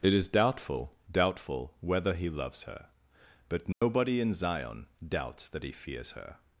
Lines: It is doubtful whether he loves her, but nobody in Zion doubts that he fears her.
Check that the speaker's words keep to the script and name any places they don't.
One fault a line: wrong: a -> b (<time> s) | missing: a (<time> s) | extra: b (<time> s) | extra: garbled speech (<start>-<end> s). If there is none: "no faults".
extra: doubtful (1.1 s)